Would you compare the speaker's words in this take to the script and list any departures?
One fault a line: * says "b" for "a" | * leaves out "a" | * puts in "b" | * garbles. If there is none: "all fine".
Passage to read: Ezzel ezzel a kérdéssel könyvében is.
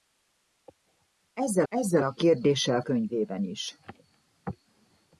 all fine